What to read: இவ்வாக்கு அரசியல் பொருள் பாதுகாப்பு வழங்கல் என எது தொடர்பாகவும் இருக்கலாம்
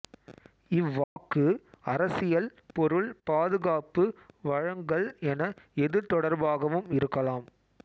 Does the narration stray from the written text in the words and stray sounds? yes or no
yes